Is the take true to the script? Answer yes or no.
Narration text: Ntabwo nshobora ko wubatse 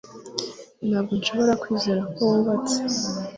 no